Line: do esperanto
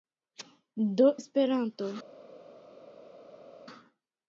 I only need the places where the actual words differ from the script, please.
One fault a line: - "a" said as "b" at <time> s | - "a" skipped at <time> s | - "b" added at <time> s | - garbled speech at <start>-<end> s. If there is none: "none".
none